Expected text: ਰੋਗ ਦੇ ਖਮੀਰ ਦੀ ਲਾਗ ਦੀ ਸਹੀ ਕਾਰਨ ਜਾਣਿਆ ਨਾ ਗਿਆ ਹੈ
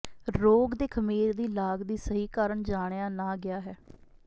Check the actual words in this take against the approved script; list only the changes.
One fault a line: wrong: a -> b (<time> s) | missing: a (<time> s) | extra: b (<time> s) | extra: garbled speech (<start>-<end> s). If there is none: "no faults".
no faults